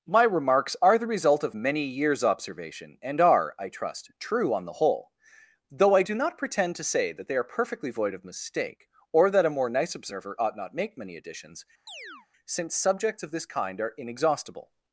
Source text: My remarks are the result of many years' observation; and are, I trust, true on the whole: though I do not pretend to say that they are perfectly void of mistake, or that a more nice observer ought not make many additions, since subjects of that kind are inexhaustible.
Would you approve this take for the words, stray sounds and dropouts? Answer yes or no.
no